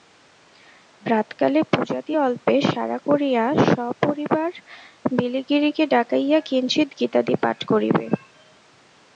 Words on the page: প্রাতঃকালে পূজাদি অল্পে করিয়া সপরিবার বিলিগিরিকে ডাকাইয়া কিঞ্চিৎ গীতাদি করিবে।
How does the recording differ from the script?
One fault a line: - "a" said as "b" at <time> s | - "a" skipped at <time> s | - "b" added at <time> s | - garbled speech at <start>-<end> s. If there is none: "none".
- "সারা" added at 2.6 s
- "পাঠ" added at 7.4 s